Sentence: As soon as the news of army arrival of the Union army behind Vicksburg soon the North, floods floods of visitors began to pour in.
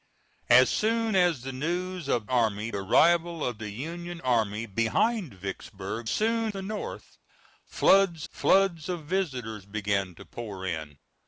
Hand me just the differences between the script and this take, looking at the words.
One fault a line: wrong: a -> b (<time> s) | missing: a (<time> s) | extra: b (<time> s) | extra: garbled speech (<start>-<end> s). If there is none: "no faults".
no faults